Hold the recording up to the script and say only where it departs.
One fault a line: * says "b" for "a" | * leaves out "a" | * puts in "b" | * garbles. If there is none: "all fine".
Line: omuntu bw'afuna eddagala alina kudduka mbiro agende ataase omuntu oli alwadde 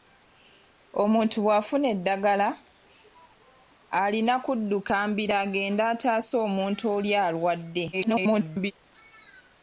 * garbles